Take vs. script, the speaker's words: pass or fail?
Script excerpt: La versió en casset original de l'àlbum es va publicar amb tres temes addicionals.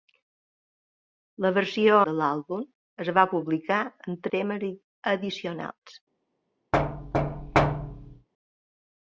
fail